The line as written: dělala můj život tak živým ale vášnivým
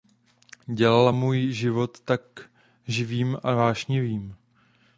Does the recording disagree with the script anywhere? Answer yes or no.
yes